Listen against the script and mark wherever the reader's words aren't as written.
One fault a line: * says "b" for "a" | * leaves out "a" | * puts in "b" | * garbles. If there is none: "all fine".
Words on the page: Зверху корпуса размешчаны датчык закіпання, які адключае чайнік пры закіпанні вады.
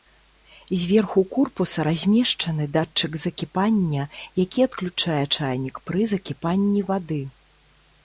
all fine